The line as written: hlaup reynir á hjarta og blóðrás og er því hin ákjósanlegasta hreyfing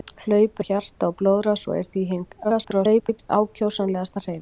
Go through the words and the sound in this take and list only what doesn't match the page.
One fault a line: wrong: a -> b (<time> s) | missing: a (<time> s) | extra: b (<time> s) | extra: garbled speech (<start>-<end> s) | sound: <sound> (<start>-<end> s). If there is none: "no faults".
missing: reynir (0.6 s)
extra: garbled speech (2.4-3.3 s)